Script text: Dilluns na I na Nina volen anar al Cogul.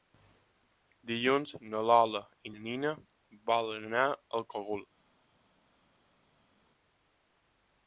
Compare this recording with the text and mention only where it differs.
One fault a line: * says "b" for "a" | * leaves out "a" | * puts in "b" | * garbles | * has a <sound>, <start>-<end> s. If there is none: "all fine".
* puts in "Lola"